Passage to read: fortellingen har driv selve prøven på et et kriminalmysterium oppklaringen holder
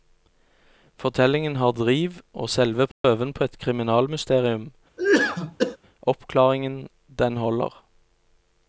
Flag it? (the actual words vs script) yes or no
yes